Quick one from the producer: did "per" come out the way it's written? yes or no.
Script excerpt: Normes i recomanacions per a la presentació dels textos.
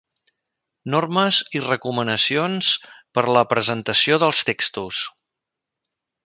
yes